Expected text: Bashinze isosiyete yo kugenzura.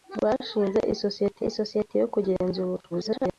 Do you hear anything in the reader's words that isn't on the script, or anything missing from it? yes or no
yes